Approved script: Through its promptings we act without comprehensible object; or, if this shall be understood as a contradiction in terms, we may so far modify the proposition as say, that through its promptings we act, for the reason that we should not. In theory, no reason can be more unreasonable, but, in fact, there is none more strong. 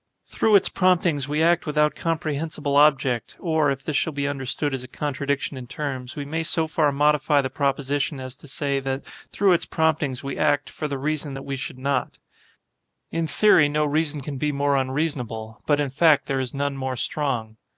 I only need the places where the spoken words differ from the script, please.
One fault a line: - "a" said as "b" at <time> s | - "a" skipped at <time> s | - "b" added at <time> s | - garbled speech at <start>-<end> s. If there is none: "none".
- "to" added at 8.4 s